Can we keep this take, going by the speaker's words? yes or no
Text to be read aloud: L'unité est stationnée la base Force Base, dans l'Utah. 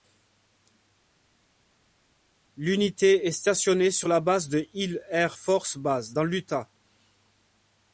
no